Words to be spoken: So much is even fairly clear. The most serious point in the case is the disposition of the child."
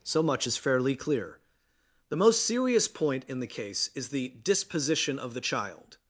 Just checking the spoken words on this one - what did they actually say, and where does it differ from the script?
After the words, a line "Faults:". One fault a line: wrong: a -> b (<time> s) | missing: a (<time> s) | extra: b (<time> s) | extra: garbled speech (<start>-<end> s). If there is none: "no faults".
So much is fairly clear. The most serious point in the case is the disposition of the child."
Faults:
missing: even (0.6 s)